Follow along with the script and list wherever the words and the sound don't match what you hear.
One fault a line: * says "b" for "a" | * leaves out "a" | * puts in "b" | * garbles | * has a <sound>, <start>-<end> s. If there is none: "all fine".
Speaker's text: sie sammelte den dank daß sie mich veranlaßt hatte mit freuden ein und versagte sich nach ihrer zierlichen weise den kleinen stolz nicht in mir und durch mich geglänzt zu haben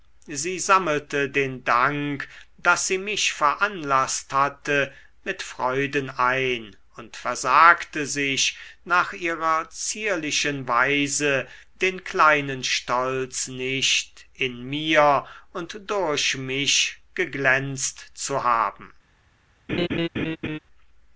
* has a laugh, 19.7-20.6 s